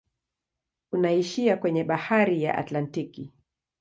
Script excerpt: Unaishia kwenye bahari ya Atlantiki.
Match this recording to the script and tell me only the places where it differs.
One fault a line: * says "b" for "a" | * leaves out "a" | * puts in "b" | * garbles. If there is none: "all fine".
all fine